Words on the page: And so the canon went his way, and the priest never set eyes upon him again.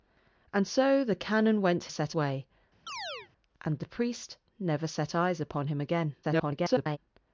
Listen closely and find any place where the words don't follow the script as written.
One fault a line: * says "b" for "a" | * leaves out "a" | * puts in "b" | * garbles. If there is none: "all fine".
* says "set" for "his"
* garbles